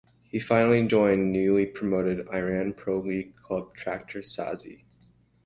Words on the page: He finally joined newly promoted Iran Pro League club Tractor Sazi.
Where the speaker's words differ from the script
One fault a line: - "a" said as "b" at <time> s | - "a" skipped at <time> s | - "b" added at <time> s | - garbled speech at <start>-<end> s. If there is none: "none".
none